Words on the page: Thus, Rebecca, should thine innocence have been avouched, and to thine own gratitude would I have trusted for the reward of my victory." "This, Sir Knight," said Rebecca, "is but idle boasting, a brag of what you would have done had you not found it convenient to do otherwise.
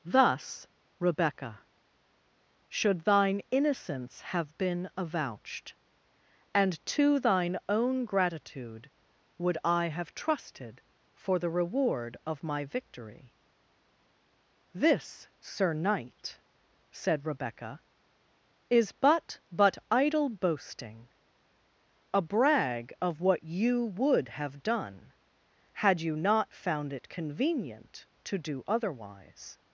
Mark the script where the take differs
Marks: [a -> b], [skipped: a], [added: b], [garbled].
Thus, Rebecca, should thine innocence have been avouched, and to thine own gratitude would I have trusted for the reward of my victory." "This, Sir Knight," said Rebecca, "is but [added: but] idle boasting, a brag of what you would have done had you not found it convenient to do otherwise.